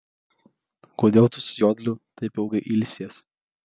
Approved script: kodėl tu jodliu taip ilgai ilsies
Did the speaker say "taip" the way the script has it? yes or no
yes